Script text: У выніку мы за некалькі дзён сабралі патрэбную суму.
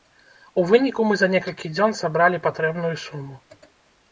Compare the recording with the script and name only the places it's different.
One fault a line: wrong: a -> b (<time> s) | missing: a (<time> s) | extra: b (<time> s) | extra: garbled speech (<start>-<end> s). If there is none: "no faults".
no faults